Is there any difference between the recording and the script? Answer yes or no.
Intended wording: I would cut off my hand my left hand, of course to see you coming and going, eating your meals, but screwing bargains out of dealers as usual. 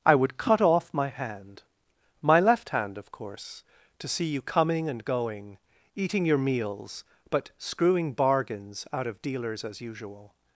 no